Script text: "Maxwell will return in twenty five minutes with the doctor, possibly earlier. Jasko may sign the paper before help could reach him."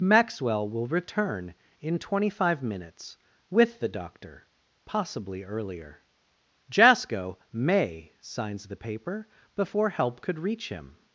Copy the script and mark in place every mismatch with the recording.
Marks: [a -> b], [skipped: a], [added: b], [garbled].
"Maxwell will return in twenty five minutes with the doctor, possibly earlier. Jasko may [sign -> signs] the paper before help could reach him."